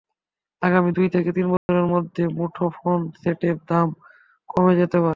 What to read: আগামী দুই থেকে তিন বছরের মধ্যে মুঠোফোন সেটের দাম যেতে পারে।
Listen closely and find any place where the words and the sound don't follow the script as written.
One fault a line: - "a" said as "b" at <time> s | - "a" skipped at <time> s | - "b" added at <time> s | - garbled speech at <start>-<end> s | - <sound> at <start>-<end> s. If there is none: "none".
- dropout at 1.6-1.7 s
- "কমে" added at 4.5 s